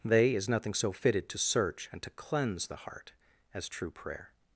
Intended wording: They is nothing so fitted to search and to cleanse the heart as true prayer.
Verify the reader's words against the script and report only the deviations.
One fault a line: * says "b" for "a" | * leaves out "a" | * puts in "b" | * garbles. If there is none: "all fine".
all fine